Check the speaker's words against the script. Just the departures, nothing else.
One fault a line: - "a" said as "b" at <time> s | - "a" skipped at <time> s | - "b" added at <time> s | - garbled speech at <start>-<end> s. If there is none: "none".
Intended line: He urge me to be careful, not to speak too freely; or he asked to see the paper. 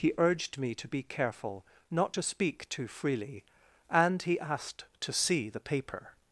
- "urge" said as "urged" at 0.2 s
- "or" said as "and" at 3.9 s